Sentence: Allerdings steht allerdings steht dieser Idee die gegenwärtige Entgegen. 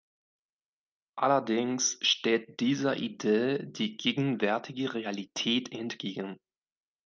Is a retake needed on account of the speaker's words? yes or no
yes